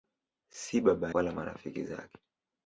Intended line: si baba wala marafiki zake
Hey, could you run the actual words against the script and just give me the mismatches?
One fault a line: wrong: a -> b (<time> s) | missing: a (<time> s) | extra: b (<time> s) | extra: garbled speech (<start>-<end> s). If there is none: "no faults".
no faults